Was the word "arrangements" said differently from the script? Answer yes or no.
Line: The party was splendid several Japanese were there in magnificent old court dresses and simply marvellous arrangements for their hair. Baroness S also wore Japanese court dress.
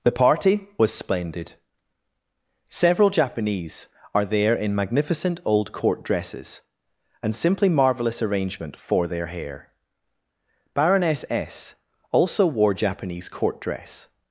yes